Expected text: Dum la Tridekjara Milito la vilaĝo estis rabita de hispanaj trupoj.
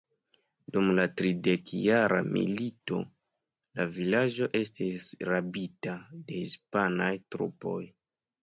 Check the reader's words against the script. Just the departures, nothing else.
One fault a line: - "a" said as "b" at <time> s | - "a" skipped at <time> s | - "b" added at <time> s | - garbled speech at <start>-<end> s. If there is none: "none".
none